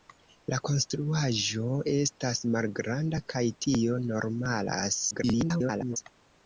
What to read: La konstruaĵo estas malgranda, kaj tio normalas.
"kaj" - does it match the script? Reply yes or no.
yes